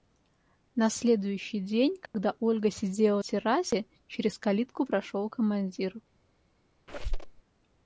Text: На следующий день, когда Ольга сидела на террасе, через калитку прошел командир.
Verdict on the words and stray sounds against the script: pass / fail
fail